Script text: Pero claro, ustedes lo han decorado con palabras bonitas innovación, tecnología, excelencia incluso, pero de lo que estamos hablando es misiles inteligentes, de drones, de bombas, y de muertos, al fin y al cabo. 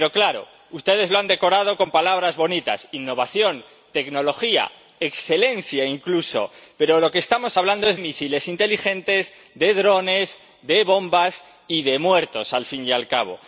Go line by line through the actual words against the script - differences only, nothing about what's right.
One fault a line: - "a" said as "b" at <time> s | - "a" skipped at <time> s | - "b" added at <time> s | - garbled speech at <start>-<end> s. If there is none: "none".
none